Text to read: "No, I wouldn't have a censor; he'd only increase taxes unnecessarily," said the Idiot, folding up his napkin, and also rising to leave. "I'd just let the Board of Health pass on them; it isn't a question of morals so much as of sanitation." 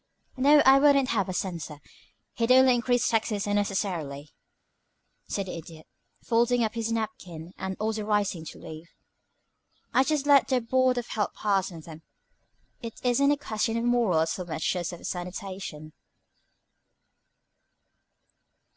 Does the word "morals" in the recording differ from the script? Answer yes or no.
no